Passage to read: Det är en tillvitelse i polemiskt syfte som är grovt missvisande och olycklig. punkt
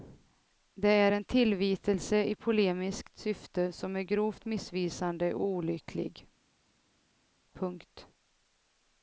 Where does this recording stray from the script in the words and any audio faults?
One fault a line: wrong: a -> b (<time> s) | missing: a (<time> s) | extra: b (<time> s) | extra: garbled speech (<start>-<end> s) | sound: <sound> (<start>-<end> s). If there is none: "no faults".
no faults